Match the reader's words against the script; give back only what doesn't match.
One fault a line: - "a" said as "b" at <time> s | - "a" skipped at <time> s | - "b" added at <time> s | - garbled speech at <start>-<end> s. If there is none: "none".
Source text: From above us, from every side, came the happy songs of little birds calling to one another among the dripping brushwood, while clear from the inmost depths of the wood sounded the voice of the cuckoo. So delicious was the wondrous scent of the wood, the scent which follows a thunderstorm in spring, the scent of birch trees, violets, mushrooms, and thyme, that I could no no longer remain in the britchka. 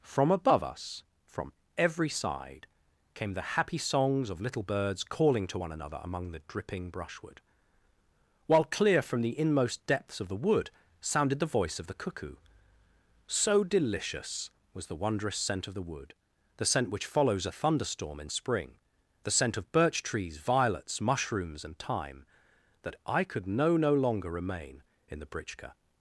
none